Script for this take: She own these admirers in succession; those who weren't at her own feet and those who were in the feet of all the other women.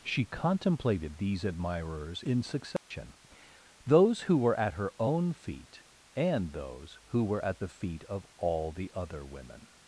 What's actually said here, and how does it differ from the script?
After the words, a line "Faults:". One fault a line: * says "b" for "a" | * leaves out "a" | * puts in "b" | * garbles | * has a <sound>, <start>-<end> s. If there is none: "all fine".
She contemplated these admirers in succession; those who were at her own feet and those who were at the feet of all the other women.
Faults:
* says "contemplated" for "own"
* has a dropout, 2.8-2.9 s
* says "were" for "weren't"
* says "at" for "in"